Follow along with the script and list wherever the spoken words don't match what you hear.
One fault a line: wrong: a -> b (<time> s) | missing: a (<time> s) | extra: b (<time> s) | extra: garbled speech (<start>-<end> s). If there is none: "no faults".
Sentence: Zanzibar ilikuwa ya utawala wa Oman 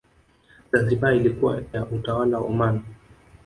no faults